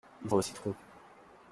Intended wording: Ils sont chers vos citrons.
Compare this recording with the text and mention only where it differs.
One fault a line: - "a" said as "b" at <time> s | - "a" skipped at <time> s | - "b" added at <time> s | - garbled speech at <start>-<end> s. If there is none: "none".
- "sont chers" skipped at 0.3 s